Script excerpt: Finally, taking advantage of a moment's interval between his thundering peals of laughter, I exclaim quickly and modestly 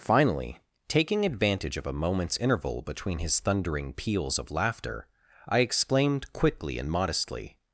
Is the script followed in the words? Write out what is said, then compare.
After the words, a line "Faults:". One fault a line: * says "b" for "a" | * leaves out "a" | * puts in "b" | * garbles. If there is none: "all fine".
Finally, taking advantage of a moment's interval between his thundering peals of laughter, I exclaimed quickly and modestly
Faults:
* says "exclaimed" for "exclaim"